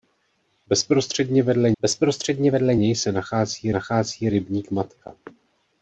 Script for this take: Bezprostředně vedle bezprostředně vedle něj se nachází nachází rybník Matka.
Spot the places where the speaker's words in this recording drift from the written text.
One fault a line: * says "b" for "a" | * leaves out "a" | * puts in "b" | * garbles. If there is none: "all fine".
all fine